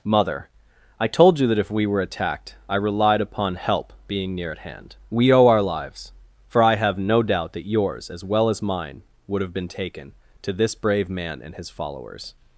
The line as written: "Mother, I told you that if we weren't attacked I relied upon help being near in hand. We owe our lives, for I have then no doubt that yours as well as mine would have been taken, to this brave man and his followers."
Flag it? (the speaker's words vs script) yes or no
yes